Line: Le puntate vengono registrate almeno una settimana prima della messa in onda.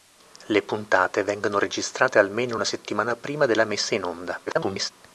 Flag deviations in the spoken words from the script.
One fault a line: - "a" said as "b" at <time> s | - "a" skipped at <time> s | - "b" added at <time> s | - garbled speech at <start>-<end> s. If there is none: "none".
- garbled speech at 4.5-4.9 s